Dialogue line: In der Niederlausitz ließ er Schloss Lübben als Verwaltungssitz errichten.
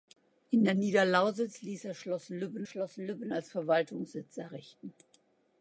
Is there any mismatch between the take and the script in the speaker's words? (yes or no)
yes